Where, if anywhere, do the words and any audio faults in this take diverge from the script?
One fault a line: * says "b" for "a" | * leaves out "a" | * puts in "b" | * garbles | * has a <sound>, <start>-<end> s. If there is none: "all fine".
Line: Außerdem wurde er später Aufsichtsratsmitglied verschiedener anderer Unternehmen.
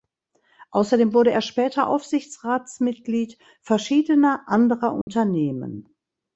* has a dropout, 5.0-5.1 s